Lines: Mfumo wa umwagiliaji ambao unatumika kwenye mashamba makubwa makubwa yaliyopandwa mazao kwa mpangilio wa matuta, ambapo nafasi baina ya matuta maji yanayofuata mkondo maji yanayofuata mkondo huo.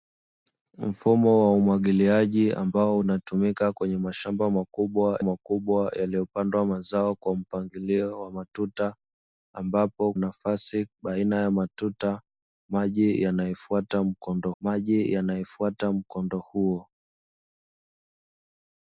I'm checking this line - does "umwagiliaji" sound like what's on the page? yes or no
yes